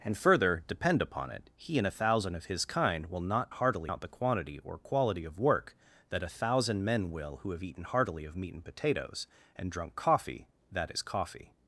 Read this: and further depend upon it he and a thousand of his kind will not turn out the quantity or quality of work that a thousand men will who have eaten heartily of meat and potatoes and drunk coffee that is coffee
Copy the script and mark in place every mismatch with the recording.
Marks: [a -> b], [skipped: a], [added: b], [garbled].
and further depend upon it he and a thousand of his kind will not [turn -> heartily] out the quantity or quality of work that a thousand men will who have eaten heartily of meat and potatoes and drunk coffee that is coffee